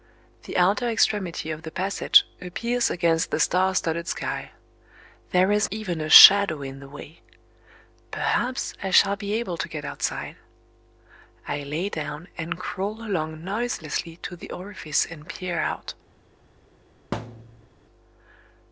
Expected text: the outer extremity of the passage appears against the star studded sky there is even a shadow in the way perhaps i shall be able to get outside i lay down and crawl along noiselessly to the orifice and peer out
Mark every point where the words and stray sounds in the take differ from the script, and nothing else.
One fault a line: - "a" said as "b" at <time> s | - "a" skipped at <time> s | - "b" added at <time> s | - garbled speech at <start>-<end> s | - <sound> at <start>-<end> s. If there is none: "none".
- thud at 17.1-17.7 s